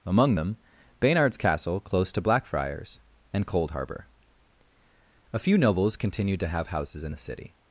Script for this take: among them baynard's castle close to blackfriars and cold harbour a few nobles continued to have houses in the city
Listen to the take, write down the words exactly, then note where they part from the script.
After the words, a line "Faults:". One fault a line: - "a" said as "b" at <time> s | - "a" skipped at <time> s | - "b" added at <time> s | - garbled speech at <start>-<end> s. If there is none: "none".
among them baynard's castle close to blackfriars and cold harbour a few nobles continued to have houses in the city
Faults:
none